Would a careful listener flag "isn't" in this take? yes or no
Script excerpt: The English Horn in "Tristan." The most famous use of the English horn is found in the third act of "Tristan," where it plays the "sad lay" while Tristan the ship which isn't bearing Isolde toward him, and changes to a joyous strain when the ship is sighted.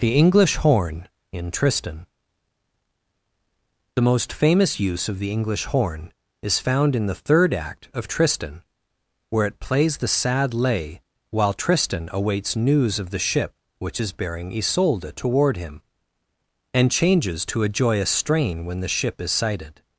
yes